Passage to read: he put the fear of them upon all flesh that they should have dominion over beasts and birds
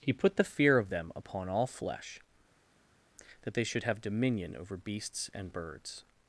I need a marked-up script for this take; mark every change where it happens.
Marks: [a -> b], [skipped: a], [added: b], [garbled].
he put the fear of them upon all flesh that they should have dominion over beasts and birds